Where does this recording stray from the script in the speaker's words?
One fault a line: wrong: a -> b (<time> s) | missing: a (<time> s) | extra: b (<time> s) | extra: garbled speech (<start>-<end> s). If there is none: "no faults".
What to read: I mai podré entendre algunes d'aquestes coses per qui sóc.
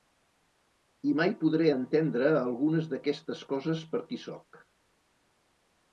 no faults